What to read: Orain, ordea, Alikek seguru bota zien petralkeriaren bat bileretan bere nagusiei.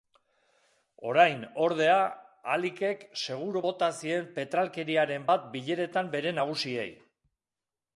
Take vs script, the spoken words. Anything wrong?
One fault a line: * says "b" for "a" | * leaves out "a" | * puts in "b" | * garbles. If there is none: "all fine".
all fine